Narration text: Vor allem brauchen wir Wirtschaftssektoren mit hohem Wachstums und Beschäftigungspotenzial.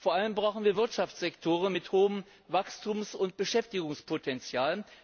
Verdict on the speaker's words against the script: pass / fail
pass